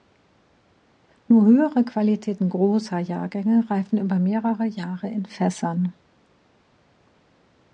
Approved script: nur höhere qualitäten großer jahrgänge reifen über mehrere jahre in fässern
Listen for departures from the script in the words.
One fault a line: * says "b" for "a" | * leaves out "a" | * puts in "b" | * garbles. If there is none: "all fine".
all fine